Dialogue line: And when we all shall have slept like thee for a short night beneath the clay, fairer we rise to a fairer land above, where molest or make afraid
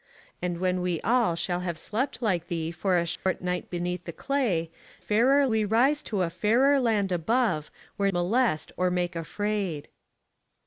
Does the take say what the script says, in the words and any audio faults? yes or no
no